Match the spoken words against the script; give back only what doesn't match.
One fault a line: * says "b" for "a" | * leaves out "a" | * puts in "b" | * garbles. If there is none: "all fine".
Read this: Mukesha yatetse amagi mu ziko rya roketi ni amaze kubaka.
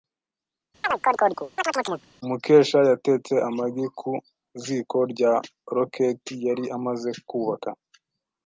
* says "ku" for "mu"
* says "yari" for "ni"